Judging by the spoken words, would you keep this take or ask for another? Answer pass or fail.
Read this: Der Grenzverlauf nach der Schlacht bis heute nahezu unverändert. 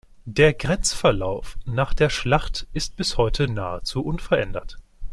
fail